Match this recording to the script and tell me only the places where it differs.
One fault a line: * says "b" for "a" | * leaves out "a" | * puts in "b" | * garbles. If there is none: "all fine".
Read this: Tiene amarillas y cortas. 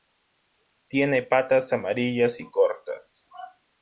* puts in "patas"